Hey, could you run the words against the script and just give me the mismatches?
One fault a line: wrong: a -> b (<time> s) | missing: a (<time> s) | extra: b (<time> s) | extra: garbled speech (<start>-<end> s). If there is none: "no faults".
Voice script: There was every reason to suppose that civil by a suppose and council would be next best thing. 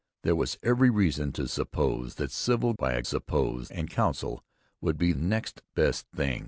no faults